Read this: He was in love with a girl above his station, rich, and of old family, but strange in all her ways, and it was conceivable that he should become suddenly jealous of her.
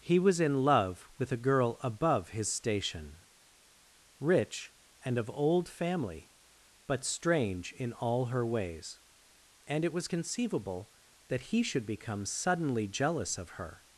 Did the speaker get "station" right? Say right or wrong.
right